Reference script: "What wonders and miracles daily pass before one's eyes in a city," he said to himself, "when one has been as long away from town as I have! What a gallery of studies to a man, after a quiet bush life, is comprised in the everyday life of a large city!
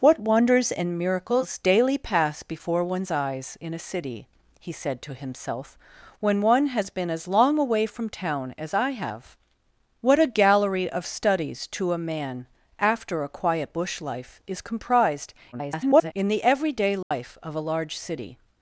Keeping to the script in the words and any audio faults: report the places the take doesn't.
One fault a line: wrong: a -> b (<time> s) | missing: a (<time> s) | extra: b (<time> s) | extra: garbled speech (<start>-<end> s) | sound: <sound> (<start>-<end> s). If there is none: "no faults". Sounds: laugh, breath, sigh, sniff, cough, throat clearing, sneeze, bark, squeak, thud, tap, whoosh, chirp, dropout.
extra: garbled speech (15.5-16.1 s)
sound: dropout (17.0-17.1 s)